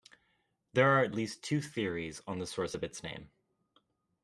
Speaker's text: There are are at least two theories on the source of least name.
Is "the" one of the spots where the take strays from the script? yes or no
no